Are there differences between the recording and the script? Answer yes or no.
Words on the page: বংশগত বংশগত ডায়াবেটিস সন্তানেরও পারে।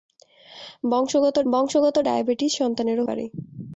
no